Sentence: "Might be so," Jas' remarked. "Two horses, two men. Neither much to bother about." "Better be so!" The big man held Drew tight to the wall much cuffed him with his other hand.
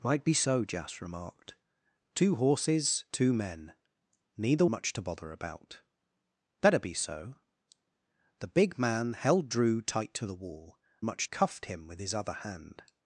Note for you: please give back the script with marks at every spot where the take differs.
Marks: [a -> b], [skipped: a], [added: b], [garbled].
"Might be so," Jas' remarked. "Two horses, two men. Neither much to bother about." "Better be so!" The big man held Drew tight to the wall much cuffed him with his other hand.